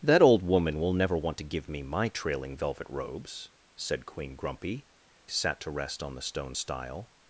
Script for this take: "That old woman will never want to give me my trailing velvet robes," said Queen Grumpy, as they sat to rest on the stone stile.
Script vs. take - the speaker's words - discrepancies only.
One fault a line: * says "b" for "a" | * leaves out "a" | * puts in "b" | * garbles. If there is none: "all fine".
* leaves out "as they"